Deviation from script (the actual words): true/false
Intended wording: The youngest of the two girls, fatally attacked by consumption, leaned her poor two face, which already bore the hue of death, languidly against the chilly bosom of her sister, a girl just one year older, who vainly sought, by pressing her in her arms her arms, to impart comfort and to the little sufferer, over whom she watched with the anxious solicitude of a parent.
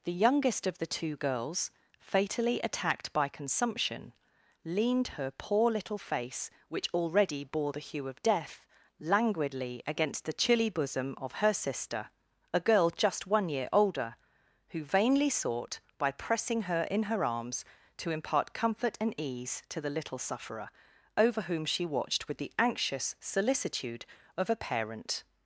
true